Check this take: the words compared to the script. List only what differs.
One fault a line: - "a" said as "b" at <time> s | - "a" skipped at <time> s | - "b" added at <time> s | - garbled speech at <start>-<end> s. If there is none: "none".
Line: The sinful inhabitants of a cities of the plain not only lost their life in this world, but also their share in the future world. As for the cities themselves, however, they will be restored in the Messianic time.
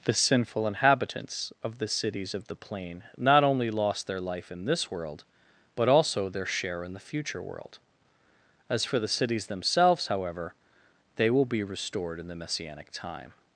- "a" said as "the" at 1.8 s